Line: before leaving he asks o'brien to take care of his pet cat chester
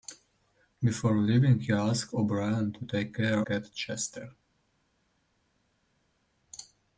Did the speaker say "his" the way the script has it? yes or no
no